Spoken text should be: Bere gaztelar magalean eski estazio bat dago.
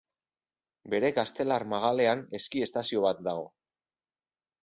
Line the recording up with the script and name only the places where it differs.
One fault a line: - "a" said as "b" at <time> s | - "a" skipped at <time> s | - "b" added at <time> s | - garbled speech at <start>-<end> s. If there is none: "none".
none